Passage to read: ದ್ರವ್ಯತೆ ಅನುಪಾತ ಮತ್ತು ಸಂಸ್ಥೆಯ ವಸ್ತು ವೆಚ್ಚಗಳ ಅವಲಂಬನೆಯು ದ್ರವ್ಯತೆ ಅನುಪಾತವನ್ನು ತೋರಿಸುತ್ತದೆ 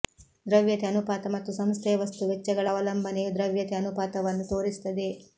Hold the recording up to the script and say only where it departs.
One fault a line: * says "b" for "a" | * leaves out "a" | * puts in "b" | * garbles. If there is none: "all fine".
all fine